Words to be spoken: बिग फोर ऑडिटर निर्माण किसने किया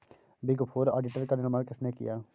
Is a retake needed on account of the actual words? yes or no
yes